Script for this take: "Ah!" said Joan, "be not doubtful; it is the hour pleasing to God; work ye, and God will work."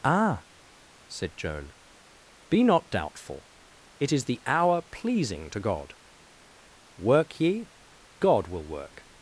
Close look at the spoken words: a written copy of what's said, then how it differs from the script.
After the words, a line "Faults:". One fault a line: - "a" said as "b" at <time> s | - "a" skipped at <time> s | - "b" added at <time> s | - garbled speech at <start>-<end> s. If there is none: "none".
"Ah!" said Joan, "be not doubtful; it is the hour pleasing to God; work ye, God will work."
Faults:
- "and" skipped at 7.7 s